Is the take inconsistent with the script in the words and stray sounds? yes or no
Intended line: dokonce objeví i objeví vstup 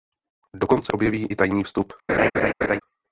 yes